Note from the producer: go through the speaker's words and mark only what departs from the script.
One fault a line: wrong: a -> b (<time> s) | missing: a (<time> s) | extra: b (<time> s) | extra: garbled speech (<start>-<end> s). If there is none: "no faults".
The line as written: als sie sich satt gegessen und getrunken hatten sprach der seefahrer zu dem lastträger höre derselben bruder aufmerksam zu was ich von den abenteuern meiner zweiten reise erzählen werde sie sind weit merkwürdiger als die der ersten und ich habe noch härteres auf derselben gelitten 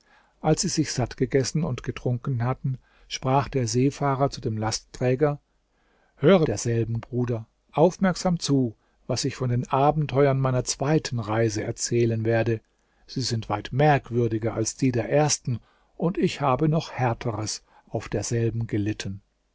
no faults